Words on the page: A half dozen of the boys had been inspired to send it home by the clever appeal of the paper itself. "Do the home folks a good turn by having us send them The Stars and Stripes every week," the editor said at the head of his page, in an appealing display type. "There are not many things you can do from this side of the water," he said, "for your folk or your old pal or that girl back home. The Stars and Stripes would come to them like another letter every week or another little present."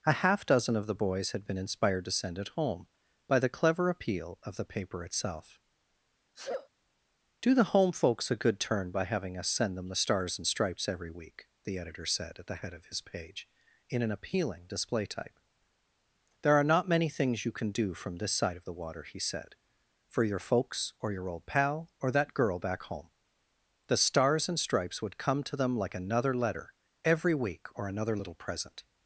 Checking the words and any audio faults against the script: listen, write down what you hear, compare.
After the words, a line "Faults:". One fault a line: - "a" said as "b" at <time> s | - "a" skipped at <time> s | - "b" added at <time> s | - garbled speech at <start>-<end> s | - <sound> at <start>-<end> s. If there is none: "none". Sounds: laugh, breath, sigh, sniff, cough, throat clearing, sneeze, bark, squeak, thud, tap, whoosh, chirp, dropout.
A half dozen of the boys had been inspired to send it home by the clever appeal of the paper itself. "Do the home folks a good turn by having us send them The Stars and Stripes every week," the editor said at the head of his page, in an appealing display type. "There are not many things you can do from this side of the water," he said, "for your folks or your old pal or that girl back home. The Stars and Stripes would come to them like another letter every week or another little present."
Faults:
- sneeze at 6.4-6.7 s
- "folk" said as "folks" at 20.4 s